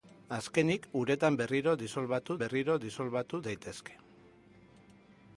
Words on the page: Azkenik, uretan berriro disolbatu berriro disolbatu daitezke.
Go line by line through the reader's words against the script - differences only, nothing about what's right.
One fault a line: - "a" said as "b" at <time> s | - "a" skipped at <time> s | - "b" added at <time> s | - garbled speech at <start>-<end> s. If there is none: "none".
none